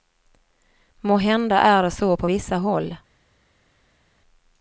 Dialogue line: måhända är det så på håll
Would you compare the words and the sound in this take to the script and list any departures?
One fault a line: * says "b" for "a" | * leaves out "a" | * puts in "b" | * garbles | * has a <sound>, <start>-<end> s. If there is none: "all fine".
* puts in "vissa"